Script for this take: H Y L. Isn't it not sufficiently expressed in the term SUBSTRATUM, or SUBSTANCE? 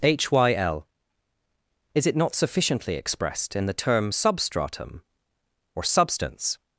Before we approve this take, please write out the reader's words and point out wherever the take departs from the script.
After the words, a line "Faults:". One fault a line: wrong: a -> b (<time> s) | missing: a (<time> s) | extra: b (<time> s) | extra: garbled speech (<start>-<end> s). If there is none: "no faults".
H Y L. Is it not sufficiently expressed in the term SUBSTRATUM, or SUBSTANCE?
Faults:
wrong: Isn't -> Is (1.9 s)